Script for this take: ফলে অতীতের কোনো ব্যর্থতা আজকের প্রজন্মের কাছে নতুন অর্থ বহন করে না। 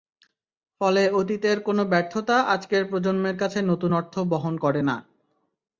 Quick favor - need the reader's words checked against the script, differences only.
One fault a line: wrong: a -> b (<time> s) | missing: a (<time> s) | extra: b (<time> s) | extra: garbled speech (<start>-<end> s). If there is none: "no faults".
no faults